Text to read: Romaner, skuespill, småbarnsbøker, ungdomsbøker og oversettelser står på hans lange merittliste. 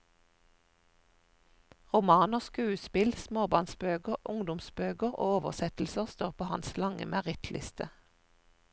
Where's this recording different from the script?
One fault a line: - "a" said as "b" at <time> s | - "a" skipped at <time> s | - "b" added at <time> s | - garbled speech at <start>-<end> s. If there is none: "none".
none